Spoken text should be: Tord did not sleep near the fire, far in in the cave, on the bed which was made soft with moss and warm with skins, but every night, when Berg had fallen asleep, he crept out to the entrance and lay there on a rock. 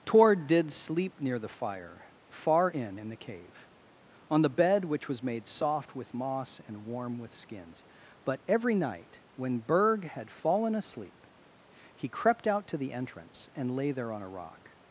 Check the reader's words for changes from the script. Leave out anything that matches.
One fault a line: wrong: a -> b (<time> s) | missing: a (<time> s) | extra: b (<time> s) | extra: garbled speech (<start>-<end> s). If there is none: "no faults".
missing: not (0.7 s)